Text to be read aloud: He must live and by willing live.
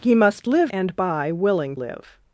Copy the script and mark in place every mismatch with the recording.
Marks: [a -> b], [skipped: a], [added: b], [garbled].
He must live and by willing live.